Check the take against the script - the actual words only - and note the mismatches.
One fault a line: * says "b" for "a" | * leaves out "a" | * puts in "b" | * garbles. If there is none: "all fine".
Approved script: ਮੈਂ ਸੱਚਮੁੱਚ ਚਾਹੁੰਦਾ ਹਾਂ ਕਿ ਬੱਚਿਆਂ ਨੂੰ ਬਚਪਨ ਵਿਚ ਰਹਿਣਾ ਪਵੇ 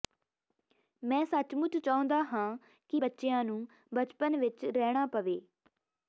all fine